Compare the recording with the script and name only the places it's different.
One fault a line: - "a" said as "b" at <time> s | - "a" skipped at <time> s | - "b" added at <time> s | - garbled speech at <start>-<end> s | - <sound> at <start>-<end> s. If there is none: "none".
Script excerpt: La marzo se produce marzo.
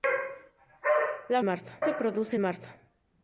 none